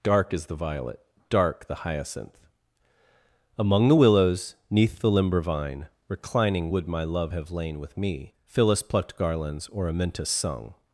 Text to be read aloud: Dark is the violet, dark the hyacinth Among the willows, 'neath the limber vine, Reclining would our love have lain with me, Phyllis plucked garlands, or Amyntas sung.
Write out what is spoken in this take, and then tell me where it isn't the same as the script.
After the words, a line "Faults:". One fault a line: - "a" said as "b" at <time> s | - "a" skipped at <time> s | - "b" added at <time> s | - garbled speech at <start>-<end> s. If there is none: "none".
Dark is the violet, dark the hyacinth Among the willows, 'neath the limber vine, Reclining would my love have lain with me, Phyllis plucked garlands, or Amyntas sung.
Faults:
- "our" said as "my" at 6.9 s